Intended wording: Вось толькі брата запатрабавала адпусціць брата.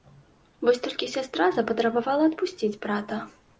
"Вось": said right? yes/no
yes